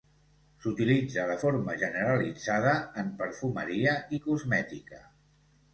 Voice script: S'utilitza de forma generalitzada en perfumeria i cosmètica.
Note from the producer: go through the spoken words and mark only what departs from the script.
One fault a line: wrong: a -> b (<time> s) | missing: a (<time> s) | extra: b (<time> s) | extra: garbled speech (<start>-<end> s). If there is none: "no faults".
no faults